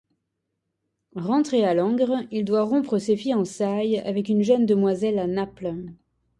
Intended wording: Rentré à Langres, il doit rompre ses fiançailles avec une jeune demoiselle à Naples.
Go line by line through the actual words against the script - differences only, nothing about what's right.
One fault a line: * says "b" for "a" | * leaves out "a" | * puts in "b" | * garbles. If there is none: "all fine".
all fine